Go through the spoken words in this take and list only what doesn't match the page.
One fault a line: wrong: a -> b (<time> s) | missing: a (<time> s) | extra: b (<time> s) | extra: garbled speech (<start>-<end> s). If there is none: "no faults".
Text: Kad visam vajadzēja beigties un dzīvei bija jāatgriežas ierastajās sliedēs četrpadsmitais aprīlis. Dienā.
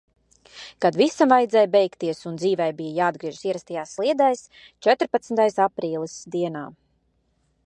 no faults